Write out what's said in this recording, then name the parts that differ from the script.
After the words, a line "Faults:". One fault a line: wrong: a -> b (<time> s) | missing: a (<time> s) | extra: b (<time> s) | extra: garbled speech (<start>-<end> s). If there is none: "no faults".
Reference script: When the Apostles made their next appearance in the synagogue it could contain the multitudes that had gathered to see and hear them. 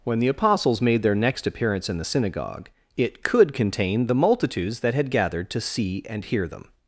When the Apostles made their next appearance in the synagogue it could contain the multitudes that had gathered to see and hear them.
Faults:
no faults